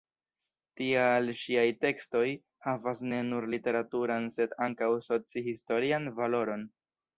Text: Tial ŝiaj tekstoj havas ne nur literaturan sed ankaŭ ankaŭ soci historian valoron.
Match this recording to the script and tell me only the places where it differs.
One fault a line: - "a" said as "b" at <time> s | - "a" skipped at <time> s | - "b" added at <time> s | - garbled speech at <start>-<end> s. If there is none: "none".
- "ankaŭ" skipped at 5.0 s